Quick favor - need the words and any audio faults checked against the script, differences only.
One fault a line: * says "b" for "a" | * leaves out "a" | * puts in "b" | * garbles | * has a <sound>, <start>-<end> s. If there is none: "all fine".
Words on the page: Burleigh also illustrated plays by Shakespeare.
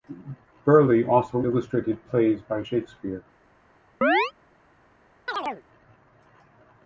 * has a chirp, 4.0-4.3 s
* has a chirp, 5.3-5.6 s